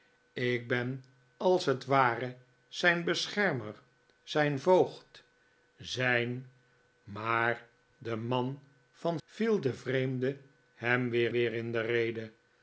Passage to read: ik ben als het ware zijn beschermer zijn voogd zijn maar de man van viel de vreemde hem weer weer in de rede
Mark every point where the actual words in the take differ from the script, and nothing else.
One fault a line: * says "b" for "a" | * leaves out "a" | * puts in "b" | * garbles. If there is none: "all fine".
all fine